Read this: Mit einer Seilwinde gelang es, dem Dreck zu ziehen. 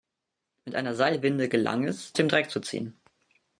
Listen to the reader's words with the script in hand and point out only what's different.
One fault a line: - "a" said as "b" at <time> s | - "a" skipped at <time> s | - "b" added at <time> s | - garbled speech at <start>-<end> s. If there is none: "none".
none